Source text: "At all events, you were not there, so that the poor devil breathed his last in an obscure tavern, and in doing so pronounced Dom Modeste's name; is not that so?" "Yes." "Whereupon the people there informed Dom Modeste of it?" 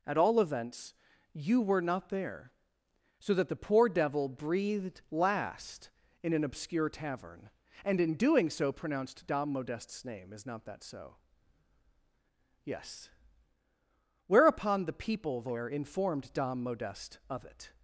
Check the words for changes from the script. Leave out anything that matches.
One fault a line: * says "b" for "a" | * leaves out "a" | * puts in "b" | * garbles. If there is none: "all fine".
* leaves out "his"